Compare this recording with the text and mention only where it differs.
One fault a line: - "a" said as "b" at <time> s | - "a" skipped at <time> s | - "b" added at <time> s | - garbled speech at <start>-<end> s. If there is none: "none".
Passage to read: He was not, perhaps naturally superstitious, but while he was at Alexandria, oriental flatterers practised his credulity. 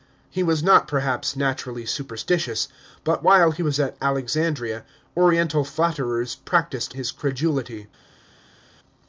none